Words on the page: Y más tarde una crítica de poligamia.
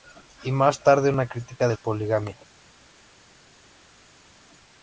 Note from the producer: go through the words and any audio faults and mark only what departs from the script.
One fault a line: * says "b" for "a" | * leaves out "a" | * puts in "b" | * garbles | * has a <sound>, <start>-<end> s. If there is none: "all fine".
all fine